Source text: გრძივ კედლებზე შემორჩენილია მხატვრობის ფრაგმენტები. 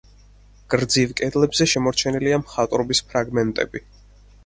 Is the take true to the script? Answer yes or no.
yes